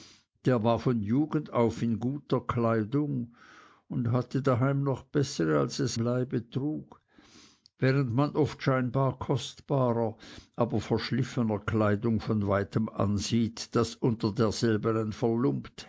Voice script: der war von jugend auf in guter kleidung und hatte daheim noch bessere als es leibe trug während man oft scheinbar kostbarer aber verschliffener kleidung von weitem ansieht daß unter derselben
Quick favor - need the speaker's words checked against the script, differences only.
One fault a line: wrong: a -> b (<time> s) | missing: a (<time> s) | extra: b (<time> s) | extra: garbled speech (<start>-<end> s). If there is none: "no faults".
no faults